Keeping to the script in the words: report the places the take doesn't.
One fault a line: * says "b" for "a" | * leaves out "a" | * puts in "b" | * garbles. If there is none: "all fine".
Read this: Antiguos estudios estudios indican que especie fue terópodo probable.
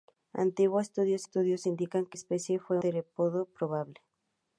all fine